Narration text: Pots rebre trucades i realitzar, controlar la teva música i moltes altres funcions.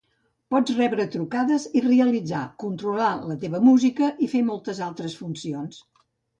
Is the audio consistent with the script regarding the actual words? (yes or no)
no